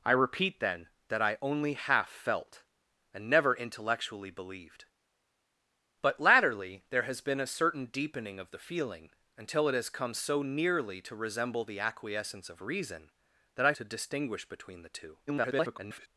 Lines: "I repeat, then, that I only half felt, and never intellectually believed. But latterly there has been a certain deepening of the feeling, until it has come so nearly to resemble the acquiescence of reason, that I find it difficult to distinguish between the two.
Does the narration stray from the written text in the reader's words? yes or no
yes